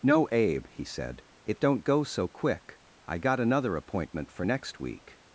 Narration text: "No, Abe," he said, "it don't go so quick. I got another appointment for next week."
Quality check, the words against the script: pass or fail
pass